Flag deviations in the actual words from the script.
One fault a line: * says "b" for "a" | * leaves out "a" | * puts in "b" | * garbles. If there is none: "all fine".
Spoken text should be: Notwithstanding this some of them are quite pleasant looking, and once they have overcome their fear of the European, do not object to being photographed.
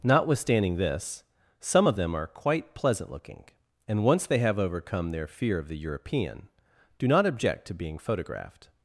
all fine